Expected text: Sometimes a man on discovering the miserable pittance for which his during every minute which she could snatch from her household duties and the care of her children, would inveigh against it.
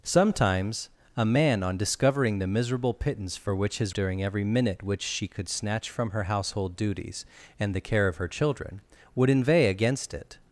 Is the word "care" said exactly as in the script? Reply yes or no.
yes